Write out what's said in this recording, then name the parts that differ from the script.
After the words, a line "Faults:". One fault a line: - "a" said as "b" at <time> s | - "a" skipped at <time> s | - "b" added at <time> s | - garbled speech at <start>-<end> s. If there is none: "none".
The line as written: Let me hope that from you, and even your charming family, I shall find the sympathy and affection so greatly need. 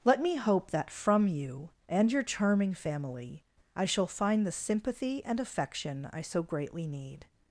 Let me hope that from you, and your charming family, I shall find the sympathy and affection I so greatly need.
Faults:
- "even" skipped at 2.1 s
- "I" added at 6.1 s